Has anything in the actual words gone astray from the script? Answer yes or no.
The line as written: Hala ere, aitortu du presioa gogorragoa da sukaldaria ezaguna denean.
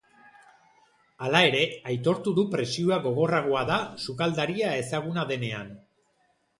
no